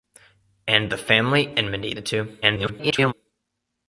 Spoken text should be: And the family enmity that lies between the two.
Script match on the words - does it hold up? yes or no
no